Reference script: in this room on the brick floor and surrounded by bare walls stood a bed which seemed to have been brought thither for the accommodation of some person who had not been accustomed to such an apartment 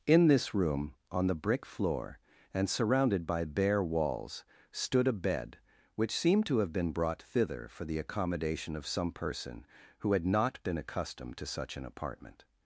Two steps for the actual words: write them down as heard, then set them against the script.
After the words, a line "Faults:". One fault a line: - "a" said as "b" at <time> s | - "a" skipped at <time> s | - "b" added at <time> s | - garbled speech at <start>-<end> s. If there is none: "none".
in this room on the brick floor and surrounded by bare walls stood a bed which seemed to have been brought thither for the accommodation of some person who had not been accustomed to such an apartment
Faults:
none